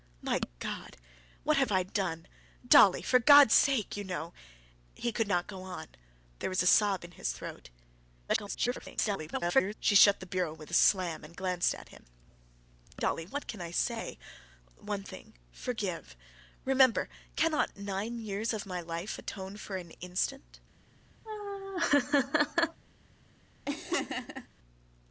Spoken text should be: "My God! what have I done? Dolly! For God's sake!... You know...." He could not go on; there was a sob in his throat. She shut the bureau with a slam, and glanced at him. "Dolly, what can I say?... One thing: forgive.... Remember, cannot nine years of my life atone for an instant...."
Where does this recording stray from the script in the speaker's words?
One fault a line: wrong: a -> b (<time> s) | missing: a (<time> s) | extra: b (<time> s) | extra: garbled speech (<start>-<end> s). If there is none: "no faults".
extra: garbled speech (8.3-9.7 s)